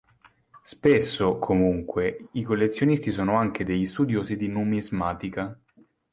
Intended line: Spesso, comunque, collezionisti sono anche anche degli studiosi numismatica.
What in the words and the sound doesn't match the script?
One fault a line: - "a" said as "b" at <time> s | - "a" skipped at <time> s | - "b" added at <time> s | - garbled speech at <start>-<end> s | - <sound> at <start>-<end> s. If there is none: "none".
- "i" added at 2.3 s
- "anche" skipped at 3.6 s
- "di" added at 4.4 s